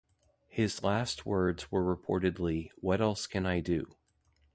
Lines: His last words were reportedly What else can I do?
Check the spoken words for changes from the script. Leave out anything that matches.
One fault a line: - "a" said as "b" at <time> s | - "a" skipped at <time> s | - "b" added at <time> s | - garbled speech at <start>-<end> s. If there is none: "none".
none